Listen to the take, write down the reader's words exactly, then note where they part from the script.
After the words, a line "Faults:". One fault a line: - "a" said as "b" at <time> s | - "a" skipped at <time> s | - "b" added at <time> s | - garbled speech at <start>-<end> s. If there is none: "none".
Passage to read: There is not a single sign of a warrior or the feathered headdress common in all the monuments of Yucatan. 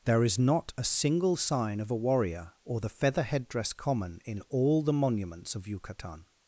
There is not a single sign of a warrior or the feather headdress common in all the monuments of Yucatan.
Faults:
- "feathered" said as "feather" at 2.9 s